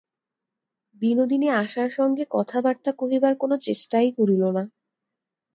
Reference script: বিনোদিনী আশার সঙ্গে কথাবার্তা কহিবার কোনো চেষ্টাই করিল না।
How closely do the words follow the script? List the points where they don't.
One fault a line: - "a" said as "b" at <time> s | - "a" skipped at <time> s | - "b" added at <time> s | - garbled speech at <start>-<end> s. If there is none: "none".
none